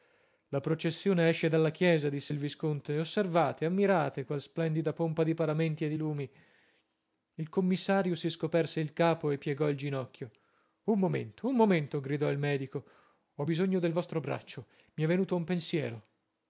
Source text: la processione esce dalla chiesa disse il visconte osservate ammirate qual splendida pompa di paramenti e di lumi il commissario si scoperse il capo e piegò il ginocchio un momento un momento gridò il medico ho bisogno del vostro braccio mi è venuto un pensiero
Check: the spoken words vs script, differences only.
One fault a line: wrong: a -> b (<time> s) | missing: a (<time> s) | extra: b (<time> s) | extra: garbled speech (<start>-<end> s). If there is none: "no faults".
no faults